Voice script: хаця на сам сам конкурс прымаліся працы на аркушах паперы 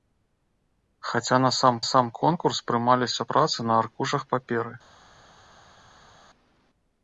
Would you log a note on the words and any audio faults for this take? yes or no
no